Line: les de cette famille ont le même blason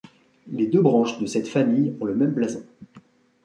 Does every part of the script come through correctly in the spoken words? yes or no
no